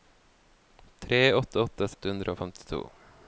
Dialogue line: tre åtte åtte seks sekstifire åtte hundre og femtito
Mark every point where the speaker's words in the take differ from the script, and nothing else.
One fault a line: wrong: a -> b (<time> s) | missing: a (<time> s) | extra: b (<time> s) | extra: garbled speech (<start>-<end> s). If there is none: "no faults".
missing: seks sekstifire (1.9 s)